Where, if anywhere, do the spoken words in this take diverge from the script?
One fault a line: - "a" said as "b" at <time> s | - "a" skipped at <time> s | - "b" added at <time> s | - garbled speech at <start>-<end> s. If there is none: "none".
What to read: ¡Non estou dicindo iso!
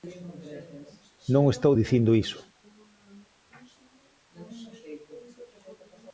none